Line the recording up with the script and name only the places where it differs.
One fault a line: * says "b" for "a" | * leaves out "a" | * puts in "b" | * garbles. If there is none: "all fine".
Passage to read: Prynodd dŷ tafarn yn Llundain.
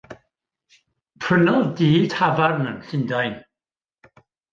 all fine